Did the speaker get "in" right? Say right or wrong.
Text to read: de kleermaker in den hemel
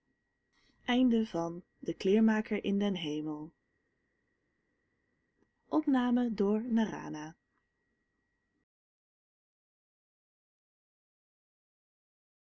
right